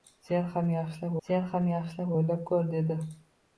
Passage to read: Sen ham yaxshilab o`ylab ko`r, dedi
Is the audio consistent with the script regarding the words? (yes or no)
no